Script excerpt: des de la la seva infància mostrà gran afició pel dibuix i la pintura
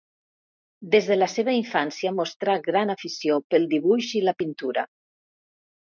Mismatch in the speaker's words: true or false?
true